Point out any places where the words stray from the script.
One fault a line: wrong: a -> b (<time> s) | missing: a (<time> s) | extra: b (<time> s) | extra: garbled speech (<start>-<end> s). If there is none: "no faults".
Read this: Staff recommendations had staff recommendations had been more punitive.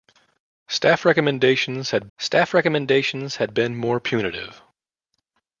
no faults